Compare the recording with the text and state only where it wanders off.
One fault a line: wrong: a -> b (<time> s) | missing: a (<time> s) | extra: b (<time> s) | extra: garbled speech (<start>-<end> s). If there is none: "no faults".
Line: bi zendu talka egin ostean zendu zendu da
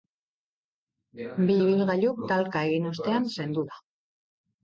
wrong: zendu -> ibilgailuk (1.6 s)
missing: zendu (3.6 s)